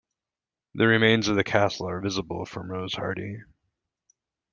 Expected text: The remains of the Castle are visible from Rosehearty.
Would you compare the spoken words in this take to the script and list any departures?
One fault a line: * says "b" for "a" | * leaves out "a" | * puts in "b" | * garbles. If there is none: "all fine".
all fine